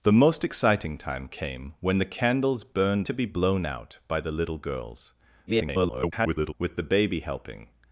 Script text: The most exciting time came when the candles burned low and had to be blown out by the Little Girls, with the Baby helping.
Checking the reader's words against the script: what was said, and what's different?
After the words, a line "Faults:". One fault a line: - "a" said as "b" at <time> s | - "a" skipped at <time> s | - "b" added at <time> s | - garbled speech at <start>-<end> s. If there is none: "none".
The most exciting time came when the candles burned to be blown out by the Little Girls, [garbled] with the Baby helping.
Faults:
- "low and had" skipped at 3.1 s
- garbled speech at 5.5-6.5 s